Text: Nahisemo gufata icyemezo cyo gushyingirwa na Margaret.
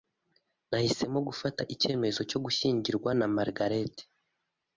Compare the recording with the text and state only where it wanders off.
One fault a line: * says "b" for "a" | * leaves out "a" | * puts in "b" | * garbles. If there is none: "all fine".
all fine